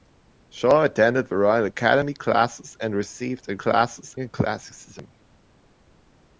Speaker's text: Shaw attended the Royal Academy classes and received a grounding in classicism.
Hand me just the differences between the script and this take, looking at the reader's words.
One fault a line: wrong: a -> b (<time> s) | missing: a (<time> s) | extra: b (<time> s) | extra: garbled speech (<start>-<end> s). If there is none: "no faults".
wrong: grounding -> classes (3.5 s)